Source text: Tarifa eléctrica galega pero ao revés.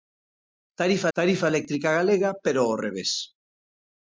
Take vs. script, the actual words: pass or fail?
fail